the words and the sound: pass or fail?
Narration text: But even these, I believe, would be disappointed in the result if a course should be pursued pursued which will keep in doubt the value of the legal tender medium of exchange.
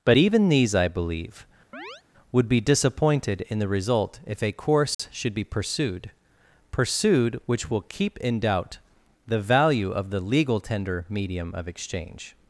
fail